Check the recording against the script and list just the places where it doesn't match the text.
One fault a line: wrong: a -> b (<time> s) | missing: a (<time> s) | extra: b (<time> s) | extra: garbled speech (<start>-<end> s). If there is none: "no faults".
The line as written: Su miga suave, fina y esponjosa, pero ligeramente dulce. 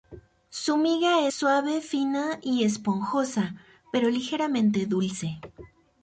no faults